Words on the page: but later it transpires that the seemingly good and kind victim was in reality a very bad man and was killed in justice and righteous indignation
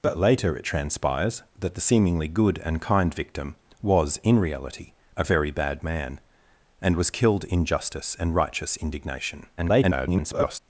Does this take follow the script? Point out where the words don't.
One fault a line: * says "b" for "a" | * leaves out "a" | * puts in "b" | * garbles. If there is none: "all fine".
* garbles